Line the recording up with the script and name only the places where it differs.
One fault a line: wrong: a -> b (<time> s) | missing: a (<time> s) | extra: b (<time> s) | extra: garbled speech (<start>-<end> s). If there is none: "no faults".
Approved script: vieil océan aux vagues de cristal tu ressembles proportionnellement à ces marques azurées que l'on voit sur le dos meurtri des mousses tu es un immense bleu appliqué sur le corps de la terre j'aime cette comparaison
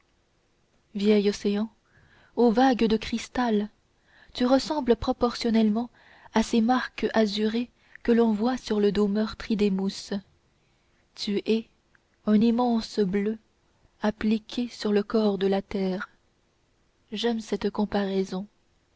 no faults